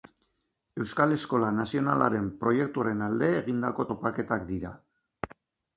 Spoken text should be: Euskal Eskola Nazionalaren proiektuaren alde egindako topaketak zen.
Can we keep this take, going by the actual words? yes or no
no